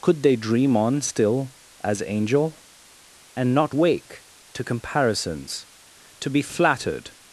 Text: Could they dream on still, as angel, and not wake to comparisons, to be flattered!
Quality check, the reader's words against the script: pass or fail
pass